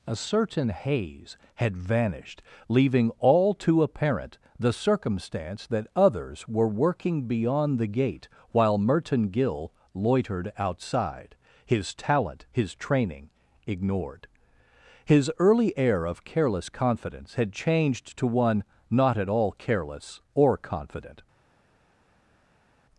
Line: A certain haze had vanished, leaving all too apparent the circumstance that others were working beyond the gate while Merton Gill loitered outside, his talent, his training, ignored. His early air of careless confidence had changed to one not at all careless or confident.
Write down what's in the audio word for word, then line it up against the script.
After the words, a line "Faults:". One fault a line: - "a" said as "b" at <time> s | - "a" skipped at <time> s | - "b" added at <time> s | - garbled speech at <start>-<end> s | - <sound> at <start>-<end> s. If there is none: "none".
A certain haze had vanished, leaving all too apparent the circumstance that others were working beyond the gate while Merton Gill loitered outside, his talent, his training, ignored. His early air of careless confidence had changed to one not at all careless or confident.
Faults:
none